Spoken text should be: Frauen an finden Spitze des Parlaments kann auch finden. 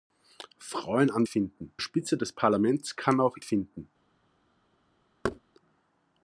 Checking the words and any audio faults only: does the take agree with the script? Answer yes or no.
no